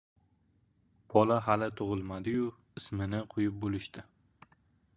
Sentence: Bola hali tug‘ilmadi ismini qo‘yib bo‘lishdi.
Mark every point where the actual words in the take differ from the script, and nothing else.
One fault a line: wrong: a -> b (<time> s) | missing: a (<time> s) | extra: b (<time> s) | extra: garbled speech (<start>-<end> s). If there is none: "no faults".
extra: yu (2.3 s)